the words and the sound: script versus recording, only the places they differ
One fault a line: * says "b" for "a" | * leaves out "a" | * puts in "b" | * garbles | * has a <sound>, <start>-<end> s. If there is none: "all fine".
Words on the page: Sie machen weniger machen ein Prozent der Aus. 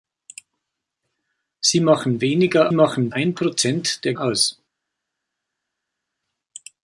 all fine